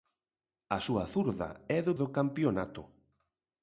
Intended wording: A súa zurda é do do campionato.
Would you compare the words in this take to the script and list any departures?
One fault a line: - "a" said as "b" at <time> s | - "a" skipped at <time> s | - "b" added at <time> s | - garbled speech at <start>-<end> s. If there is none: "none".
none